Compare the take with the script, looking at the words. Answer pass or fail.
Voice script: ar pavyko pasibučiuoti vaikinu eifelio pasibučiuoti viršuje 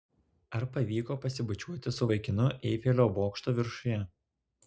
fail